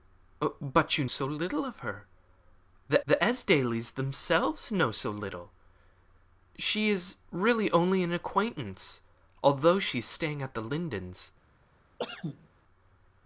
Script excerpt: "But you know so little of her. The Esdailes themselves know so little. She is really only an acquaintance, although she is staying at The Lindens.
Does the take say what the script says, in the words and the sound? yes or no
no